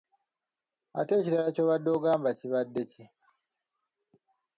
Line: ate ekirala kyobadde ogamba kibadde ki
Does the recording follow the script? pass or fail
pass